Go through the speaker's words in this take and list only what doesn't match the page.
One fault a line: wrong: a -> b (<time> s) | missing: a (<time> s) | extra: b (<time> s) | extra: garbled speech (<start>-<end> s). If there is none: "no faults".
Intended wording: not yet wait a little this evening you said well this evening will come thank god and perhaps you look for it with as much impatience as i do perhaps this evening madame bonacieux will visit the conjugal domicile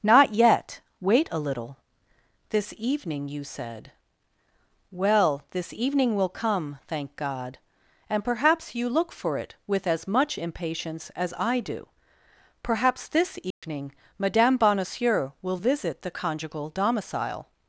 no faults